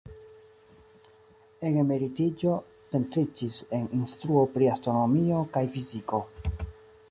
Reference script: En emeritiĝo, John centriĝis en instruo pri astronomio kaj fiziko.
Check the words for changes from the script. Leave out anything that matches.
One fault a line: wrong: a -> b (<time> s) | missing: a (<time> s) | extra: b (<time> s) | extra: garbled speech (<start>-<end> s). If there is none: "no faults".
missing: John (2.5 s)